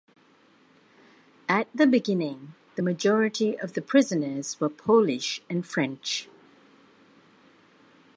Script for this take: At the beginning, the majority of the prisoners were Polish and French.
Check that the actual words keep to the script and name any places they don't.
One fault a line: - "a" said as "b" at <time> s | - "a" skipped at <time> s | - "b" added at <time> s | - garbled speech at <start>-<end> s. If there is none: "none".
none